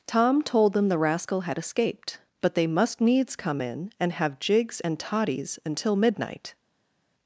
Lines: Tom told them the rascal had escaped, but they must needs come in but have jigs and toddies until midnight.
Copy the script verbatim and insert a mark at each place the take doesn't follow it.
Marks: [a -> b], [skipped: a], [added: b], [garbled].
Tom told them the rascal had escaped, but they must needs come in [but -> and] have jigs and toddies until midnight.